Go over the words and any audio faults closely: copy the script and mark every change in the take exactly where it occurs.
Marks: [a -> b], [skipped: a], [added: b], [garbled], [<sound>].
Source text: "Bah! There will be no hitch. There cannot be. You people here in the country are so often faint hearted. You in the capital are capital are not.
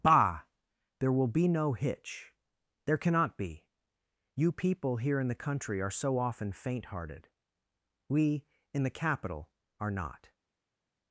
"Bah! There will be no hitch. There cannot be. You people here in the country are so often faint hearted. [You -> We] in the capital are [skipped: capital are] not.